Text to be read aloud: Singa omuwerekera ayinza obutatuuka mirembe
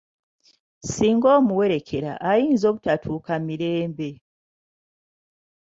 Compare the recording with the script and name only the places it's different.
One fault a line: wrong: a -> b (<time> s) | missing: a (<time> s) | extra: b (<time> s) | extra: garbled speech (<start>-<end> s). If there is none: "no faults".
no faults